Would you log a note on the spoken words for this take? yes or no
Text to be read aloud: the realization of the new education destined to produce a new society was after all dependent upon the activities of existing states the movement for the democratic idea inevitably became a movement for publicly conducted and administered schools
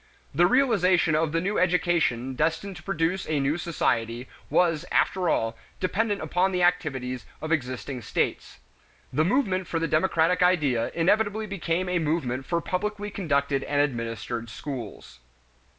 no